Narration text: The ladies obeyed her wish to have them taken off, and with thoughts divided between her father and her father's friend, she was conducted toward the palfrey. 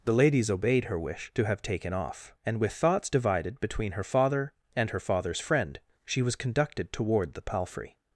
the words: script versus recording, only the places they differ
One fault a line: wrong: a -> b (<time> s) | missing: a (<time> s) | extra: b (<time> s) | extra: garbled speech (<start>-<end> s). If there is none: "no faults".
missing: them (1.6 s)